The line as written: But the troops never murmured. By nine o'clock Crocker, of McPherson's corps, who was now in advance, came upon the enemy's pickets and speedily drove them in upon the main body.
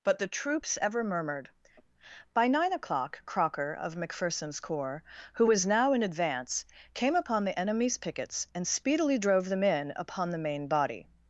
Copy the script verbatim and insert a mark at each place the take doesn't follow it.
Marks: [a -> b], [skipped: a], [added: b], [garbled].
But the troops [never -> ever] murmured. By nine o'clock Crocker, of McPherson's corps, who was now in advance, came upon the enemy's pickets and speedily drove them in upon the main body.